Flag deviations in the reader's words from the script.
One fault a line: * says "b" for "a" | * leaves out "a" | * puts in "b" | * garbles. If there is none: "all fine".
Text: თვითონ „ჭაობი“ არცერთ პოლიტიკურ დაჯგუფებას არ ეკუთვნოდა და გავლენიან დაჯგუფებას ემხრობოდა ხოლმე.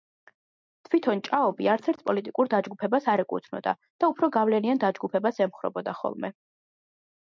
* puts in "უფრო"